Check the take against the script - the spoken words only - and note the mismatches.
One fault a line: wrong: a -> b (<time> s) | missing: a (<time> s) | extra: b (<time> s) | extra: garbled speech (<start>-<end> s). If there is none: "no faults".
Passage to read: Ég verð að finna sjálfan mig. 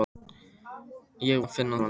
missing: verð (1.4 s)
missing: sjálfan (1.8 s)